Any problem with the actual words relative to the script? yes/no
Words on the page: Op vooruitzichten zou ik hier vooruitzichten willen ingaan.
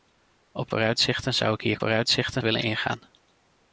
no